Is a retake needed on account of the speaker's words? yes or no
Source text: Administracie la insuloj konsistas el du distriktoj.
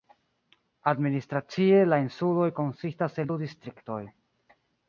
no